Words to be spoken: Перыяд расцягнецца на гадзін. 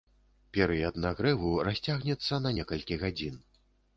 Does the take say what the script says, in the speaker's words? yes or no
no